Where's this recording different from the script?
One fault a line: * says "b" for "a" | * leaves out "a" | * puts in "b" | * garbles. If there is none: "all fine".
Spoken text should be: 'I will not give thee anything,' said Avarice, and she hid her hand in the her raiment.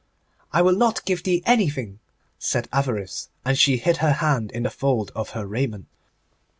* puts in "fold of"